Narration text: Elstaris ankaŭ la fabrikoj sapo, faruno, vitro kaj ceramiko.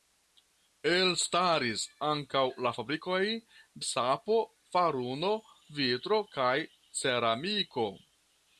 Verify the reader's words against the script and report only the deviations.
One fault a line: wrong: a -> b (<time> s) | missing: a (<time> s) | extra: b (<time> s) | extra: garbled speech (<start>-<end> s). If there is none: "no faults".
no faults